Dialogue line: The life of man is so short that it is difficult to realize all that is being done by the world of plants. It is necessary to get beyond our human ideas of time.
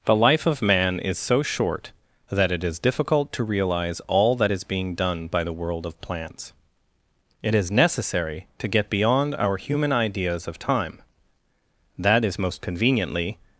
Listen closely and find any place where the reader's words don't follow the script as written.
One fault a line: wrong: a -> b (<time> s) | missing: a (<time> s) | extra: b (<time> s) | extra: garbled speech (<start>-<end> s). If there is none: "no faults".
extra: That is most conveniently (12.0 s)